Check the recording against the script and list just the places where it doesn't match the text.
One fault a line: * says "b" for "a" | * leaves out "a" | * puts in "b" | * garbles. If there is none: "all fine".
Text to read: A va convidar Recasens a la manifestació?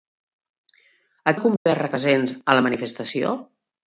all fine